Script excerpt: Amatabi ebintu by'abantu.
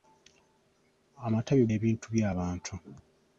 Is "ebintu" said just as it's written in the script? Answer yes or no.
yes